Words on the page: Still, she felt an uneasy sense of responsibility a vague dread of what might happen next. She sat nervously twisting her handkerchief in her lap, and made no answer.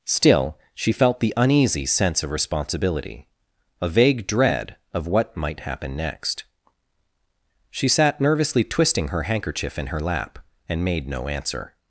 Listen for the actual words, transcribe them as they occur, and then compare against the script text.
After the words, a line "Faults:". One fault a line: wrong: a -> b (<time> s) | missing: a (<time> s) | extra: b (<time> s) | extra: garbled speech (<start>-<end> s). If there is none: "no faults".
Still, she felt the uneasy sense of responsibility a vague dread of what might happen next. She sat nervously twisting her handkerchief in her lap, and made no answer.
Faults:
wrong: an -> the (1.2 s)